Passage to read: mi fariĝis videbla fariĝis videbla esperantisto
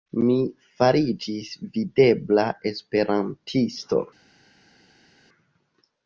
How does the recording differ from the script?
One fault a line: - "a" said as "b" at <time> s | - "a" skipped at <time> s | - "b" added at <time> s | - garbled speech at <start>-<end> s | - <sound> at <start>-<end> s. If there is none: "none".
- "fariĝis videbla" skipped at 2.5 s